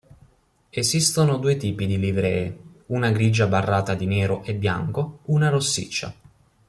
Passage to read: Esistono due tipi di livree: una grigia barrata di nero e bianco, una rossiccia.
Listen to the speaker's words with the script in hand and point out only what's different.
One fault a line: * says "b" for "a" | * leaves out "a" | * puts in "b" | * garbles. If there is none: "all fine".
all fine